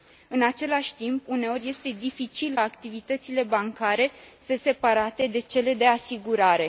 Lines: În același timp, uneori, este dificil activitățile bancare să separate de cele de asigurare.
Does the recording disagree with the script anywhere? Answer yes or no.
no